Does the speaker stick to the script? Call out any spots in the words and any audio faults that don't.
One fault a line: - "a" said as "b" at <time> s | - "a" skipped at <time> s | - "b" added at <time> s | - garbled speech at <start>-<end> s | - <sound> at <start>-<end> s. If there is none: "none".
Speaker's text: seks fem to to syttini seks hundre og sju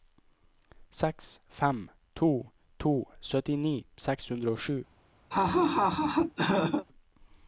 - laugh at 5.3-6.9 s